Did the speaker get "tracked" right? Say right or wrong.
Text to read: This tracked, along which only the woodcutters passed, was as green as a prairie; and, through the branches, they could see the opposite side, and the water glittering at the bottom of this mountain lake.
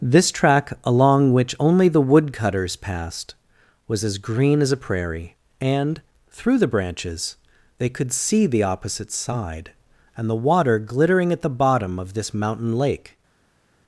wrong